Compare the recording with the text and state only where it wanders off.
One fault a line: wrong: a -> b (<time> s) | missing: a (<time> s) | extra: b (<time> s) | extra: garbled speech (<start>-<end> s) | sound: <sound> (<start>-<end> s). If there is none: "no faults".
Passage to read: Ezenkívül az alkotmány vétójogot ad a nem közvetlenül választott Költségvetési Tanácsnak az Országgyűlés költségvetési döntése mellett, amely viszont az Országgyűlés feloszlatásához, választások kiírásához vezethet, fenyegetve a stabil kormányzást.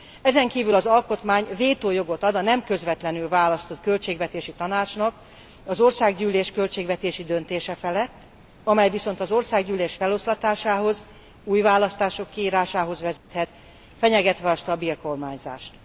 wrong: mellett -> felett (7.7 s)
extra: új (11.4 s)
sound: dropout (13.2-13.3 s)